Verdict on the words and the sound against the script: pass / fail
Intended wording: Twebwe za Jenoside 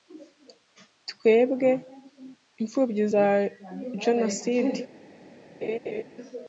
fail